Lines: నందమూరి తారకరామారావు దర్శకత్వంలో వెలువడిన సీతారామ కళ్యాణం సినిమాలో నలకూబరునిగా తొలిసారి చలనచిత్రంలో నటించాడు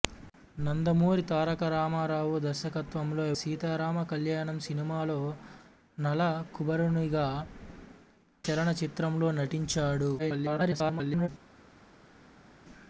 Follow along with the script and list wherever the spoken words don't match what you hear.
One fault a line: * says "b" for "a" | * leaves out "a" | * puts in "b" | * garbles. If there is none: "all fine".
* leaves out "వెలువడిన"
* leaves out "తొలిసారి"
* garbles